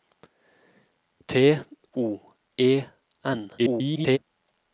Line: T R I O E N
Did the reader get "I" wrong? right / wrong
wrong